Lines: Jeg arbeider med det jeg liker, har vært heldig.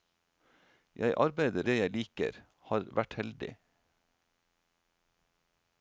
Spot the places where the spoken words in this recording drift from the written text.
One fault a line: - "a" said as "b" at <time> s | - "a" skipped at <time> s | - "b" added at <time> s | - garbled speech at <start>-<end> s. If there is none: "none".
- "med" skipped at 1.7 s